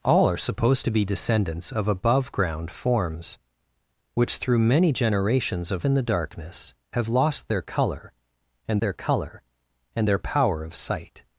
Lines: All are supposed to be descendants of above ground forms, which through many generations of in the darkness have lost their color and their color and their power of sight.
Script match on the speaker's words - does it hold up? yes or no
yes